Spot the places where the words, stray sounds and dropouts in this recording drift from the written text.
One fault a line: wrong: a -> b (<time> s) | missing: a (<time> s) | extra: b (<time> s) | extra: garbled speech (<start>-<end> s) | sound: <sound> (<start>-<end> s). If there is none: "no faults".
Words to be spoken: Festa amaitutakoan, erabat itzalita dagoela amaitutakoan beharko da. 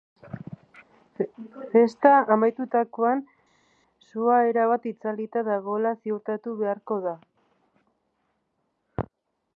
extra: sua (4.1 s)
wrong: amaitutakoan -> ziurtatu (6.0 s)